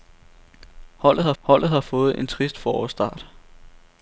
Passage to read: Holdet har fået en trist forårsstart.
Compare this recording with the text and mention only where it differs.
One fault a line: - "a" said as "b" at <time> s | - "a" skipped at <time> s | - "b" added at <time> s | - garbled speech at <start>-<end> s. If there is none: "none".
- "holdet har" added at 1.4 s